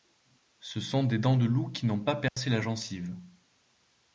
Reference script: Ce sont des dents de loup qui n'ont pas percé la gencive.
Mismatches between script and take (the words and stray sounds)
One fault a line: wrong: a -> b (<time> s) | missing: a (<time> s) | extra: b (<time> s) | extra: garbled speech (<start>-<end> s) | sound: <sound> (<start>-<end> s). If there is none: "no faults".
sound: dropout (2.3-2.4 s)